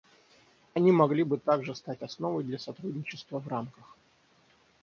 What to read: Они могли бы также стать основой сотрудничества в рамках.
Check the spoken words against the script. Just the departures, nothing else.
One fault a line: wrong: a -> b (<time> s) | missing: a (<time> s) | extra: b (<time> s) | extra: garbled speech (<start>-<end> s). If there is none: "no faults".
extra: для (2.4 s)